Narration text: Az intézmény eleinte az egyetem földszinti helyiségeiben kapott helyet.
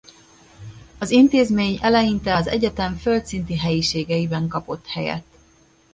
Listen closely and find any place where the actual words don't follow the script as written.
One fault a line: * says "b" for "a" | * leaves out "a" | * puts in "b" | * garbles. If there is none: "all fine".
all fine